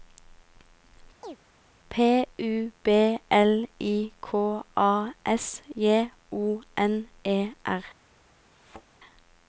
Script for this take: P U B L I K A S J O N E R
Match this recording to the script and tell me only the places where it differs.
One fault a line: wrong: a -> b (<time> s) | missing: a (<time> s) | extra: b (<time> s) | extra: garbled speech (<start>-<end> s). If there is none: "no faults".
no faults